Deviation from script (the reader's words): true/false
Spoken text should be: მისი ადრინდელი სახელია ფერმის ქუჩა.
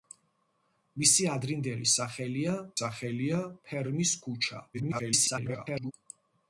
true